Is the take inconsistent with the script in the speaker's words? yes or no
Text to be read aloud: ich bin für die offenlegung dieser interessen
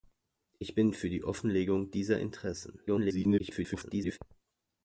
yes